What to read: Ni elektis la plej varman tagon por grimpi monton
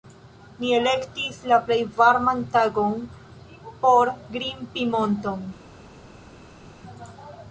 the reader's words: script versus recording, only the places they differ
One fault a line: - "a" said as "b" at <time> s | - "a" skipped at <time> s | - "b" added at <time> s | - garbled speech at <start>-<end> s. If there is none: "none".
none